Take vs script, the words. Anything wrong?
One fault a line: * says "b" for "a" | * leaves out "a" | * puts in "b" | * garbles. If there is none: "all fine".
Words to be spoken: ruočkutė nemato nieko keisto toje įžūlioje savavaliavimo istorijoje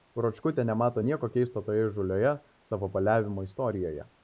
all fine